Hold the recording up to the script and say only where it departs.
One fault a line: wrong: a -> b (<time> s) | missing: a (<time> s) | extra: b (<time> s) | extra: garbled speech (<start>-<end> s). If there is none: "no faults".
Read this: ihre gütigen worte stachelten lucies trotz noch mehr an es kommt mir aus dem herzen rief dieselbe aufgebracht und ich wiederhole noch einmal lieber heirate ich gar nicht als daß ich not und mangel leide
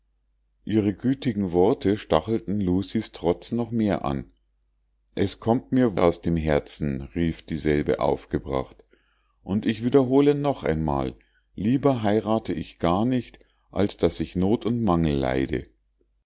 no faults